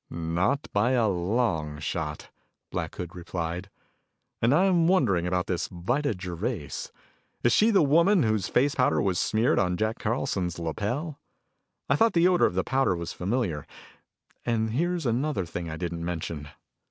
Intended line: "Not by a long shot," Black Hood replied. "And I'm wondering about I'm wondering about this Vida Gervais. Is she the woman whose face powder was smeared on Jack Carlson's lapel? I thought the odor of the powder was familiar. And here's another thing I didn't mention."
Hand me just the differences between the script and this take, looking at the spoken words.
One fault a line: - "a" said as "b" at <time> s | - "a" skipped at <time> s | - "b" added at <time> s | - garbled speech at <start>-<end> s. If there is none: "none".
- "I'm wondering about" skipped at 5.5 s